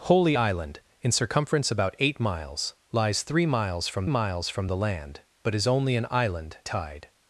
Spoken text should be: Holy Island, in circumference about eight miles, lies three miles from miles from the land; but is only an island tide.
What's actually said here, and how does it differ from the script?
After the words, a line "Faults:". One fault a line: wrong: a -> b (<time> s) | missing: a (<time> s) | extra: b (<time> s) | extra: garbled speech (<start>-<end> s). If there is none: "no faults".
Holy Island, in circumference about eight miles, lies three miles from miles from the land; but is only an island tide.
Faults:
no faults